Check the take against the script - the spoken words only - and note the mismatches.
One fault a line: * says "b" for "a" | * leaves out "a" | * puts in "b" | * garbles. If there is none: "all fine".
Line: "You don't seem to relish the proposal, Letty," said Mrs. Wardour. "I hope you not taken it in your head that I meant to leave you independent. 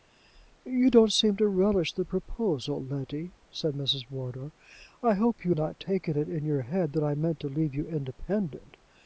all fine